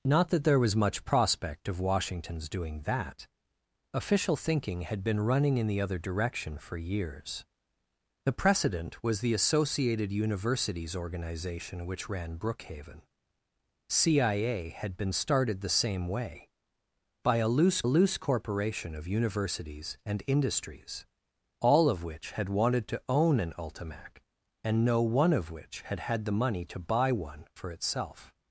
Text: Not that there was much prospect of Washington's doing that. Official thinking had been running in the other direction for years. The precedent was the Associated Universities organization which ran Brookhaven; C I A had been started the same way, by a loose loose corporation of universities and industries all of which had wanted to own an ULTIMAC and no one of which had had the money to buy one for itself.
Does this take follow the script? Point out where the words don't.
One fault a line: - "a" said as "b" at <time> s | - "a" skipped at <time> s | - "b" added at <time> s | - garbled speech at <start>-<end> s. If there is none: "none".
none